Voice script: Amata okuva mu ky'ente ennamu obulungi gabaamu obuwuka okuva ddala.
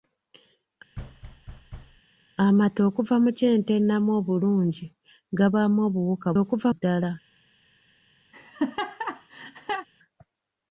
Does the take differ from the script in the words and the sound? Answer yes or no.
yes